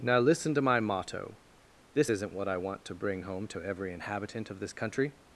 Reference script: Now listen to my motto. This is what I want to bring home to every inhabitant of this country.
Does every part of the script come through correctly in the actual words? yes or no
no